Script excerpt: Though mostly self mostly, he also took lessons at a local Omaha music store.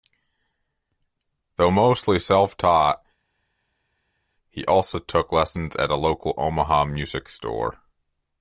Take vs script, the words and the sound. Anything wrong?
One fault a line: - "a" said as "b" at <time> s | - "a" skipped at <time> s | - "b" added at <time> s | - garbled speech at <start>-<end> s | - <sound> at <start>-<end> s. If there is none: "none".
- "mostly" said as "taught" at 2.6 s